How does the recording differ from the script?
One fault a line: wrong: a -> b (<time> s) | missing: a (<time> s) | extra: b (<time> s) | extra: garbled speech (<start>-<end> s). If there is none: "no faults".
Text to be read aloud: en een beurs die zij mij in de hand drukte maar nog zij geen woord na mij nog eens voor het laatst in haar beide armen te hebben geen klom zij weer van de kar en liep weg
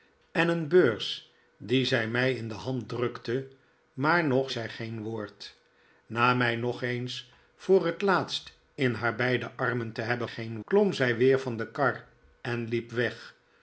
no faults